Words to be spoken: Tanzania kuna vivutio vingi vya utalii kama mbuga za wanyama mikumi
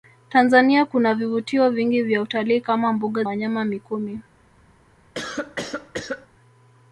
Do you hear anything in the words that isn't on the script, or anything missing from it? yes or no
yes